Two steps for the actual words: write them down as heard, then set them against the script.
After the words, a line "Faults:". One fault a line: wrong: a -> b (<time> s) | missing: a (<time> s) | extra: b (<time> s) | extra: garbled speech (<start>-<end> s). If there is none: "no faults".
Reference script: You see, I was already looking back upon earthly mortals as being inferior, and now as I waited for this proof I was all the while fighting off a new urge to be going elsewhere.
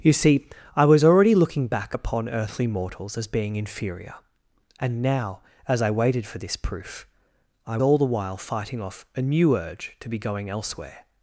You see, I was already looking back upon earthly mortals as being inferior, and now as I waited for this proof I all the while fighting off a new urge to be going elsewhere.
Faults:
missing: was (7.8 s)